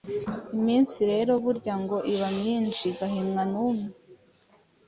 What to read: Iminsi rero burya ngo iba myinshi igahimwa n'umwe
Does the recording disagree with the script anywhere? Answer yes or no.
no